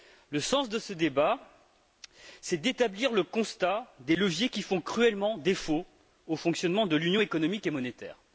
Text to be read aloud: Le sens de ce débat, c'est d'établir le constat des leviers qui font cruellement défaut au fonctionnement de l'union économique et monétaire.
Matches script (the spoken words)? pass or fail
pass